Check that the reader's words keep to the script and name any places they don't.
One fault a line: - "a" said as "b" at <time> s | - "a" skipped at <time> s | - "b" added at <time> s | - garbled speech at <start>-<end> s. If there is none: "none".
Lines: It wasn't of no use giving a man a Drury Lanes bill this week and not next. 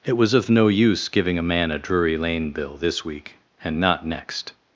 - "wasn't" said as "was" at 0.2 s
- "Lanes" said as "Lane" at 2.2 s